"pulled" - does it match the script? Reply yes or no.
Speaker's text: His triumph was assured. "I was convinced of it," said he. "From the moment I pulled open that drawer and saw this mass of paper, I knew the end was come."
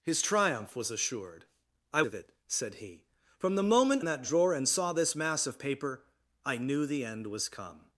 no